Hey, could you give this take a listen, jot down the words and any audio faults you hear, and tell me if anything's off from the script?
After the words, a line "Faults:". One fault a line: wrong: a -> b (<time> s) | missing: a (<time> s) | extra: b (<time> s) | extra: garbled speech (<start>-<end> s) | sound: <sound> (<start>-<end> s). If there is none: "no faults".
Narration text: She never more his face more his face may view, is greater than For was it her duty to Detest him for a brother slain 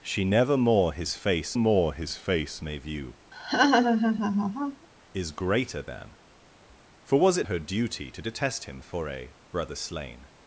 She never more his face more his face may view, is greater than For was it her duty to Detest him for a brother slain
Faults:
sound: laugh (3.3-4.9 s)